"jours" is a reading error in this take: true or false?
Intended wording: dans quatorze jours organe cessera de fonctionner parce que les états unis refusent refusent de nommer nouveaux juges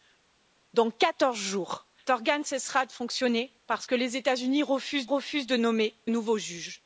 false